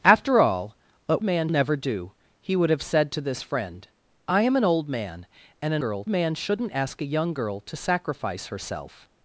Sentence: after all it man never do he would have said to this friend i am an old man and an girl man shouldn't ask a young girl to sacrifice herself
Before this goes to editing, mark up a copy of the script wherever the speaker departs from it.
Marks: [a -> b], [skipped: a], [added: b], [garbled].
after all it man never do he would have said to this friend i am an old man and an girl man shouldn't ask a young girl to sacrifice herself